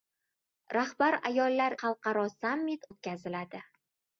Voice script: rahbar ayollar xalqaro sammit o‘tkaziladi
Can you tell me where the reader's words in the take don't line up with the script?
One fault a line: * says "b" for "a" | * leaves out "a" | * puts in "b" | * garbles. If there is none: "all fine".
all fine